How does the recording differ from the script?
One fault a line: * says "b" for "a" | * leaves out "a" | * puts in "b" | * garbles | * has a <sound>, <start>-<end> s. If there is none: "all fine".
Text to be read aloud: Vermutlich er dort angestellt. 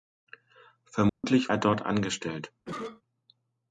* has a dropout, 1.1-1.2 s
* has a cough, 2.7-3.0 s